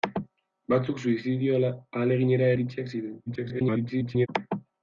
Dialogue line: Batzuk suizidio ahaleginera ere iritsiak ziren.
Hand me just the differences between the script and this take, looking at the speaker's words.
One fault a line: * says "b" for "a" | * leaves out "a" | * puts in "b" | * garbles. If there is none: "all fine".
* leaves out "ere"
* garbles